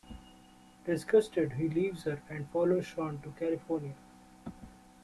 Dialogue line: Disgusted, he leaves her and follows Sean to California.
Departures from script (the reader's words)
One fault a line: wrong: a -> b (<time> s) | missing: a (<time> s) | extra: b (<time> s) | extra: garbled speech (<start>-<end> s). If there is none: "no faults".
no faults